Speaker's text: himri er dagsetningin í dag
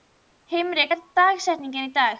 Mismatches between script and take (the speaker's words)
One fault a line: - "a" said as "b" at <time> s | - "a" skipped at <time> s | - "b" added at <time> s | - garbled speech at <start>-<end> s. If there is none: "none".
none